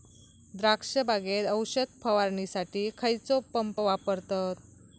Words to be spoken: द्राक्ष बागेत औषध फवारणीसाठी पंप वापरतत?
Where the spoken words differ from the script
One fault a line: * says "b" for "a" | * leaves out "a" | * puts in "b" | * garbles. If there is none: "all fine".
* puts in "खैयचो"